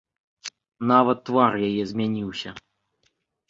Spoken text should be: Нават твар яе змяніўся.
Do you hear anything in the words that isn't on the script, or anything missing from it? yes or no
no